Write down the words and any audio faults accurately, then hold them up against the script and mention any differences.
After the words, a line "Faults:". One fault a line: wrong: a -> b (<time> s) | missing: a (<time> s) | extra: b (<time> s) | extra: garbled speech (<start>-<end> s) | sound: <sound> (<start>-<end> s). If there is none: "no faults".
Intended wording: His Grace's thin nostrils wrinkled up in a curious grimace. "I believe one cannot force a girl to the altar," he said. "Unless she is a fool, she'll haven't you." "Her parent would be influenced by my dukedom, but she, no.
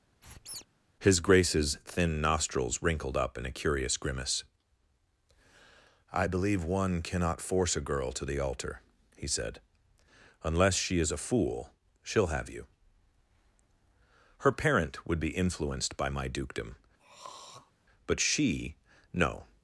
His Grace's thin nostrils wrinkled up in a curious grimace. "I believe one cannot force a girl to the altar," he said. "Unless she is a fool, she'll have you." "Her parent would be influenced by my dukedom, but she, no.
Faults:
sound: squeak (0.2-0.7 s)
wrong: haven't -> have (12.3 s)
sound: throat clearing (17.0-17.7 s)